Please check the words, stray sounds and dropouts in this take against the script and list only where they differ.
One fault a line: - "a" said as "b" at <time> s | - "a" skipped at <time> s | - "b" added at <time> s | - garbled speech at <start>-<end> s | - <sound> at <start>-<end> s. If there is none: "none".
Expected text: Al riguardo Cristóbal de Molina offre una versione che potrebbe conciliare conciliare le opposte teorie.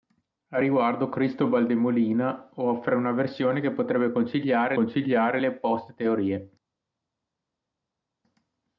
none